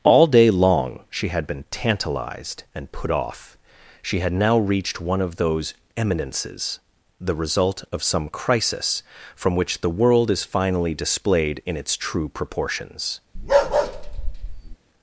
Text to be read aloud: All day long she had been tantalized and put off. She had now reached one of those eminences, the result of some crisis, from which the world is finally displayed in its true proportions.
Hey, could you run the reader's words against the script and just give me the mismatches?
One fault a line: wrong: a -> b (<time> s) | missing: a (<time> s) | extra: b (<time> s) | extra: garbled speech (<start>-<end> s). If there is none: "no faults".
no faults